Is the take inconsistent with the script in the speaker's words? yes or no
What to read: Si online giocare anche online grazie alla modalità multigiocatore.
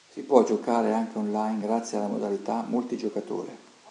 yes